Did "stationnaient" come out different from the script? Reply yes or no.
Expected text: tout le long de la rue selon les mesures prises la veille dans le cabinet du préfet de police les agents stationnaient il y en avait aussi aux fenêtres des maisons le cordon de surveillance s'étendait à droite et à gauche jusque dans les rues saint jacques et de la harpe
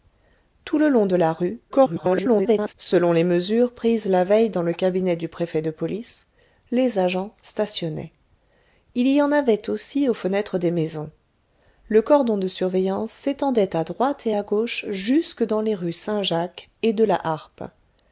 no